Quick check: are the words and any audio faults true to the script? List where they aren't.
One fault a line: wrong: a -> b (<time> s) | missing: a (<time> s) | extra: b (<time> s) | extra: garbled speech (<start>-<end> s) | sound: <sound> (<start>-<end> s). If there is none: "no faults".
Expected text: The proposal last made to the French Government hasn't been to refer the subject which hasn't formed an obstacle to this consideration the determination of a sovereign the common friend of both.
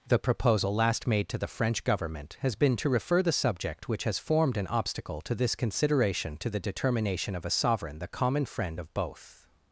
wrong: hasn't -> has (2.4 s)
wrong: hasn't -> has (4.0 s)
extra: to (6.4 s)